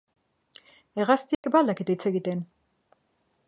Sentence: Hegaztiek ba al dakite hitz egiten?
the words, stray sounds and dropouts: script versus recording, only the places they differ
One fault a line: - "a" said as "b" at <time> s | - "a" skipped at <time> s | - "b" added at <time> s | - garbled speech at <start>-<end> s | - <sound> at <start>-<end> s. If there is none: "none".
- dropout at 1.3-1.4 s